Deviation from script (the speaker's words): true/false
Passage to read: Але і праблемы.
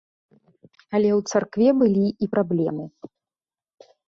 true